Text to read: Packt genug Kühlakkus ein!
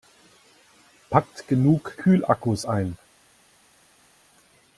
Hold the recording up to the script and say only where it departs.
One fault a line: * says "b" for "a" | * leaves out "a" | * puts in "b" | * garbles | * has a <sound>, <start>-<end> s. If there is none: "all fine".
all fine